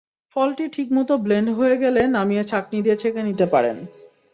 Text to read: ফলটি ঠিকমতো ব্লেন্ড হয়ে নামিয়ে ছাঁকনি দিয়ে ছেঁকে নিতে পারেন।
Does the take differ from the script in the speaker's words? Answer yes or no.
yes